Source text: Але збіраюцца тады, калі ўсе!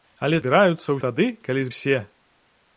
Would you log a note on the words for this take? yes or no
no